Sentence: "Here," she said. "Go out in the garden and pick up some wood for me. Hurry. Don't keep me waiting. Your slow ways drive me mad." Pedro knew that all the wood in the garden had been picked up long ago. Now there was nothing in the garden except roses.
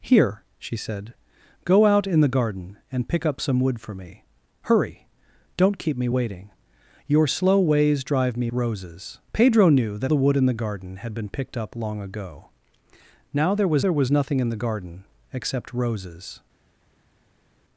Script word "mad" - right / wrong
wrong